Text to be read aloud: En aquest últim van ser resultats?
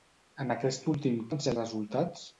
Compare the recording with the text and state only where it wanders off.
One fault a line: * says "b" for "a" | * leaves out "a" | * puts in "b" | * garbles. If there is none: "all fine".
all fine